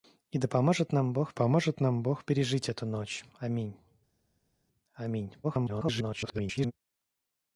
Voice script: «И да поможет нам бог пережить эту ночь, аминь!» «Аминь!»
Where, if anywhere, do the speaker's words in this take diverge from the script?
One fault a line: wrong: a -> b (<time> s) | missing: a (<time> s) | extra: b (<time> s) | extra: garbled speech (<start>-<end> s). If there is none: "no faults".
extra: поможет нам бог (1.3 s)
extra: garbled speech (5.4-6.7 s)